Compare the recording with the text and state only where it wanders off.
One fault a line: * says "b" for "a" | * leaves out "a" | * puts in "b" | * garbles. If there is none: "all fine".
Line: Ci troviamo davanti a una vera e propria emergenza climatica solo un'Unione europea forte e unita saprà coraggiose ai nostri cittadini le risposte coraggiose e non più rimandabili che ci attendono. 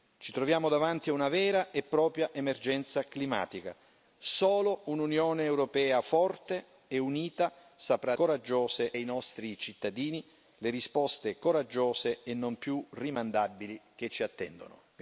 all fine